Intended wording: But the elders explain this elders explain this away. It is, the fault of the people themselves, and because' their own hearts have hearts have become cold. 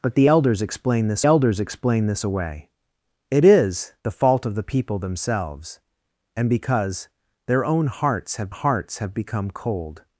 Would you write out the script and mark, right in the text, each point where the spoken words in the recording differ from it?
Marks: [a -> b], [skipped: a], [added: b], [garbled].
But the elders explain this elders explain this away. It is, the fault of the people themselves, and because' their own hearts have hearts have become cold.